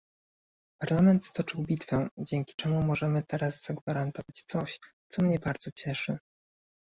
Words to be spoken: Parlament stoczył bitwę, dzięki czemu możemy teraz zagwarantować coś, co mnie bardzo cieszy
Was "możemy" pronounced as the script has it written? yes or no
yes